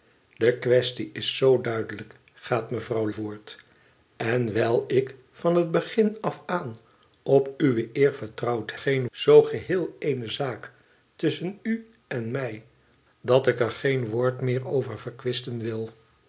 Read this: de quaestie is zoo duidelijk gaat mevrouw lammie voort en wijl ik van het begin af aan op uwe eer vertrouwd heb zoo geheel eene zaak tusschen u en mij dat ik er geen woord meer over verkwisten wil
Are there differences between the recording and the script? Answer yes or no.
yes